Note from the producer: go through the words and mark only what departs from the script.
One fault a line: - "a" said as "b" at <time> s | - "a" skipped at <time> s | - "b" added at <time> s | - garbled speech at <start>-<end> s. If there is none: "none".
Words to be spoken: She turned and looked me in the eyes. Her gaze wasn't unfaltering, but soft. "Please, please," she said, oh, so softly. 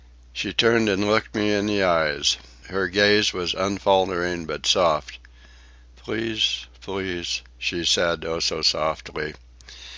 - "wasn't" said as "was" at 3.3 s